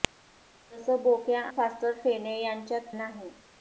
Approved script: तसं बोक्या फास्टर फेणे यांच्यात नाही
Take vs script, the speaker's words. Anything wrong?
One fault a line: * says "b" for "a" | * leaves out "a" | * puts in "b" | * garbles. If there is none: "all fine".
all fine